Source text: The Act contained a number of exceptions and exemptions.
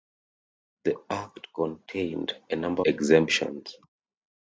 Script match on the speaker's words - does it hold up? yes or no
no